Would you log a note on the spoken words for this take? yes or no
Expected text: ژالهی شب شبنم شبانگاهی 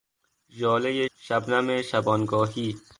yes